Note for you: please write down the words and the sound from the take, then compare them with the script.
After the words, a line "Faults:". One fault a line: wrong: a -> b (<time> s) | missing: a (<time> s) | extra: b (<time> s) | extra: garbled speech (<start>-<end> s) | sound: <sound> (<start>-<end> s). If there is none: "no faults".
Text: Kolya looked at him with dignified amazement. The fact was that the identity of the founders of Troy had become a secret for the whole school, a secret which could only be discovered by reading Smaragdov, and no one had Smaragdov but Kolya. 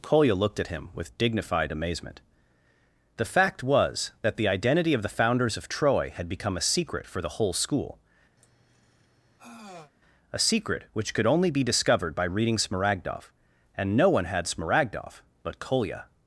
Kolya looked at him with dignified amazement. The fact was that the identity of the founders of Troy had become a secret for the whole school, a secret which could only be discovered by reading Smaragdov, and no one had Smaragdov but Kolya.
Faults:
sound: sigh (8.4-9.9 s)